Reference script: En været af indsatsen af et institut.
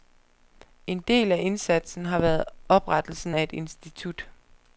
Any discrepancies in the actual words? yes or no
yes